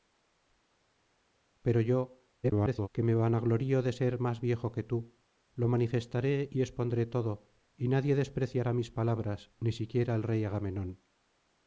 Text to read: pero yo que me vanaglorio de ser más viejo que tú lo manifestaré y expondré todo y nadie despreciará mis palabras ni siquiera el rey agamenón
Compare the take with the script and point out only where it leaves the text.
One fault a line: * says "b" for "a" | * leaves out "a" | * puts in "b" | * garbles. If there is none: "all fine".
* garbles